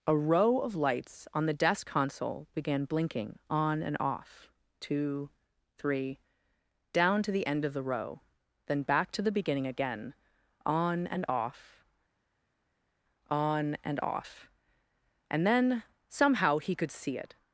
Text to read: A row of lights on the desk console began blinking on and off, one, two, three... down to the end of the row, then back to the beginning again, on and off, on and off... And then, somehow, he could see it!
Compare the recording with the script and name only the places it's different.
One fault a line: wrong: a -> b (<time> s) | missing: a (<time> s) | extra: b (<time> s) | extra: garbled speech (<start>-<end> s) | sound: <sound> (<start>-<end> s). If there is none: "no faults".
missing: one (4.5 s)